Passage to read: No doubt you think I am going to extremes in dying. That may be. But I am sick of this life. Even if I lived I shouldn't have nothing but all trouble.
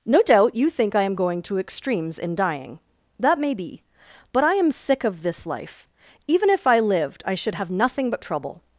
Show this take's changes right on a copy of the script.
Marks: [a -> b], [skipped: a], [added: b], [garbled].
No doubt you think I am going to extremes in dying. That may be. But I am sick of this life. Even if I lived I [shouldn't -> should] have nothing but [skipped: all] trouble.